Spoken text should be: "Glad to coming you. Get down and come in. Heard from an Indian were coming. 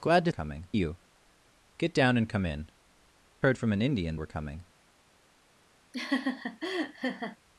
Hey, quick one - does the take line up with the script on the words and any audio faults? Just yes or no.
no